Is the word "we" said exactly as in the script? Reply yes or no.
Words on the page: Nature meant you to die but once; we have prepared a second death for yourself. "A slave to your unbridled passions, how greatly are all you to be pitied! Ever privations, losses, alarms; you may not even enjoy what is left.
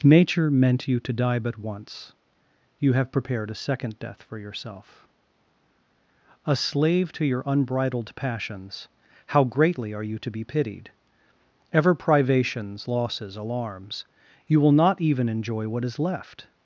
no